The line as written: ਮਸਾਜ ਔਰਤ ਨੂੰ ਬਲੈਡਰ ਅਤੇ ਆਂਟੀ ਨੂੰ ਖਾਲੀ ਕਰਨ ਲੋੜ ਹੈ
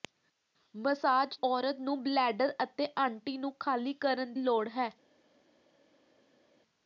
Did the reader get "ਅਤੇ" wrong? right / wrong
right